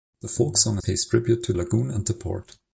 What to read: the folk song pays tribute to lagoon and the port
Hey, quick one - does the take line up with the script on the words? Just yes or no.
yes